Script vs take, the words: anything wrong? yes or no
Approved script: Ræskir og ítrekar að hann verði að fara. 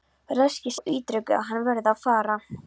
no